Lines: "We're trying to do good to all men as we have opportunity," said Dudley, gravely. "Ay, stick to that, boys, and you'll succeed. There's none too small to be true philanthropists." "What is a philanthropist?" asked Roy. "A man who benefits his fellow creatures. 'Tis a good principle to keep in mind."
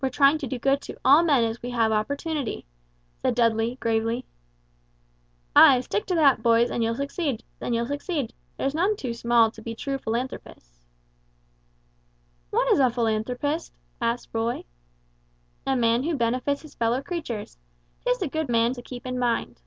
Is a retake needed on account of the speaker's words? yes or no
yes